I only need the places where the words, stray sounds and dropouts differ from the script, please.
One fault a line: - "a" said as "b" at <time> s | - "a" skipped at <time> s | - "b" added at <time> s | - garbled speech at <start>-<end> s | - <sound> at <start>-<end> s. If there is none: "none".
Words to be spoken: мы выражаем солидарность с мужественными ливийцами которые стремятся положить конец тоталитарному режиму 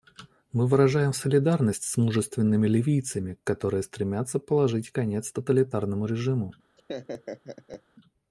- laugh at 6.8-7.8 s